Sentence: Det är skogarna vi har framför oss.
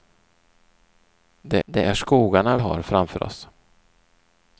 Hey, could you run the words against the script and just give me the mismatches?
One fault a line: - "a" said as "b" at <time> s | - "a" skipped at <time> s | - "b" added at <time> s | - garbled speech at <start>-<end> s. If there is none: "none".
- "det" added at 1.6 s
- "vi" skipped at 2.6 s